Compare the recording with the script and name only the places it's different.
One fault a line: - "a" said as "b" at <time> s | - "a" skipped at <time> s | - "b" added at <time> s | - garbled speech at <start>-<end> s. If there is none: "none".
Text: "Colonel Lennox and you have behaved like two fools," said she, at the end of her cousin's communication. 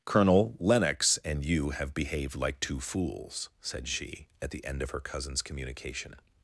none